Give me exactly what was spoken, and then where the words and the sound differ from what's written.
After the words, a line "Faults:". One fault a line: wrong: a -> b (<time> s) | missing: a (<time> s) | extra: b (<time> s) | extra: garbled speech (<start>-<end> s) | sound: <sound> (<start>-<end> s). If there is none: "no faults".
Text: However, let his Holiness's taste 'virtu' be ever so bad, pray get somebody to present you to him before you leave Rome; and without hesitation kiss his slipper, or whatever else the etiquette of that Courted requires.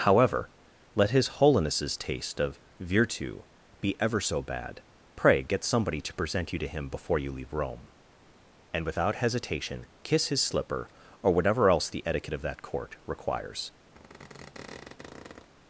However, let his Holiness's taste of 'virtu' be ever so bad, pray get somebody to present you to him before you leave Rome; and without hesitation kiss his slipper, or whatever else the etiquette of that Court requires.
Faults:
extra: of (2.4 s)
wrong: Courted -> Court (12.6 s)
sound: squeak (13.9-15.5 s)